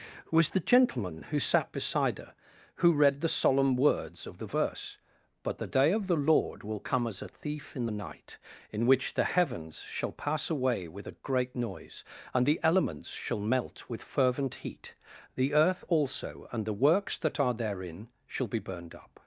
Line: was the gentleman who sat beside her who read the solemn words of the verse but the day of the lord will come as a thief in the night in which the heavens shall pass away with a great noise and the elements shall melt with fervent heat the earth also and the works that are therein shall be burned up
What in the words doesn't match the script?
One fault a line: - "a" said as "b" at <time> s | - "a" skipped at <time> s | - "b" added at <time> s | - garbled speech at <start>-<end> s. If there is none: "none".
none